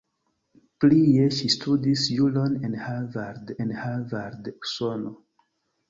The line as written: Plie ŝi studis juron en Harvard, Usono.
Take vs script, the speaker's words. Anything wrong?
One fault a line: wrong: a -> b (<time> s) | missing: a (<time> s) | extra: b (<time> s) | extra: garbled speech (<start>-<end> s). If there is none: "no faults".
extra: en Harvard (3.7 s)